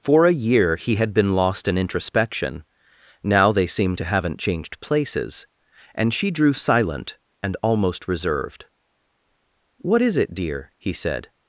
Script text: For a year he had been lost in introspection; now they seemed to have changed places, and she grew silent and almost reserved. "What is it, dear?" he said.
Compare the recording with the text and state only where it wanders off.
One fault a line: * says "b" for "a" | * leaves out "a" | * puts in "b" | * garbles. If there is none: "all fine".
* says "haven't" for "have"
* says "drew" for "grew"